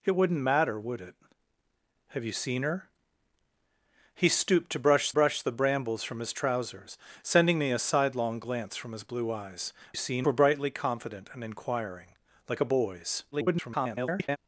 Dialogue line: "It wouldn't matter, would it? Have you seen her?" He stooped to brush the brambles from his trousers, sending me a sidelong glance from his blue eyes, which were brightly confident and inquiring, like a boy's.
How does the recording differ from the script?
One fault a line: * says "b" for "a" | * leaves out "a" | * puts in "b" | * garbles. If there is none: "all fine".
* puts in "brush"
* says "seen" for "which"
* garbles